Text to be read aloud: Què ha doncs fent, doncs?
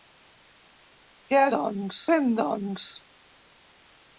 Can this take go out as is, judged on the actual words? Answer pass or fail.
pass